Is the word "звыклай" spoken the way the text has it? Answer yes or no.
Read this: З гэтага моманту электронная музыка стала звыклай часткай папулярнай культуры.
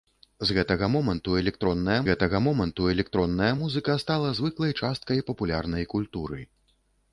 yes